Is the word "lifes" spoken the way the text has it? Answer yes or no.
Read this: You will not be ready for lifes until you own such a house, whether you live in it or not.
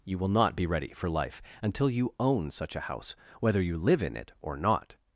no